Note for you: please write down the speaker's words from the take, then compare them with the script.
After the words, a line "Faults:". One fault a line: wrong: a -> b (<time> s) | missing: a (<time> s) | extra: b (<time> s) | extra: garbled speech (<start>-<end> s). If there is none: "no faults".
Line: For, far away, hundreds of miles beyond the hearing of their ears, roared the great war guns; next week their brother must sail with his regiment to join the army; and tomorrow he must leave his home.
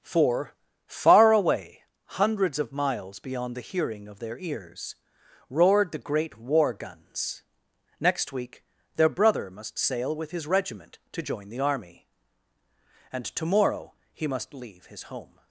For, far away, hundreds of miles beyond the hearing of their ears, roared the great war guns; next week their brother must sail with his regiment to join the army; and tomorrow he must leave his home.
Faults:
no faults